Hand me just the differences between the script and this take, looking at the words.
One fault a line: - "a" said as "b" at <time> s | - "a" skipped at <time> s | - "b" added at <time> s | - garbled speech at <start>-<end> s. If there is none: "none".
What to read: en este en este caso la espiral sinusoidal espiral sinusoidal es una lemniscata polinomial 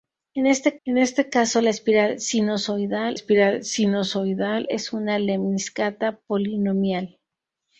none